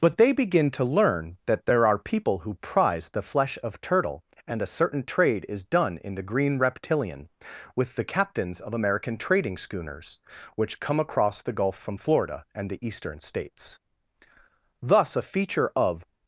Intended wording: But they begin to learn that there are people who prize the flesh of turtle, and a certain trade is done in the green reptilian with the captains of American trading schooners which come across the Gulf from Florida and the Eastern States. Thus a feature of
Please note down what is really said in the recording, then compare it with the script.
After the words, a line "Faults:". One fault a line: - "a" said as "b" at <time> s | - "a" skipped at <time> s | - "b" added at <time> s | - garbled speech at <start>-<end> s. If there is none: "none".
But they begin to learn that there are people who prize the flesh of turtle, and a certain trade is done in the green reptilian with the captains of American trading schooners which come across the Gulf from Florida and the Eastern States. Thus a feature of
Faults:
none